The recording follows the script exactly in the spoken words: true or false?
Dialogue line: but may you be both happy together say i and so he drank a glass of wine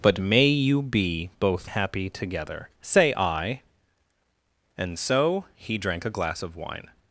true